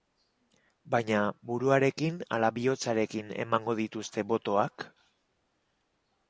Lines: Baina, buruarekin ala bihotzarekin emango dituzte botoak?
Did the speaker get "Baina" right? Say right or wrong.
right